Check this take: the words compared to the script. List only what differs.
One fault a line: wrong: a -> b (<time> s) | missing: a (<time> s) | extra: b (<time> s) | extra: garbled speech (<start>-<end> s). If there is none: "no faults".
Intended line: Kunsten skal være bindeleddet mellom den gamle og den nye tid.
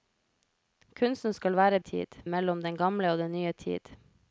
wrong: bindeleddet -> tid (1.8 s)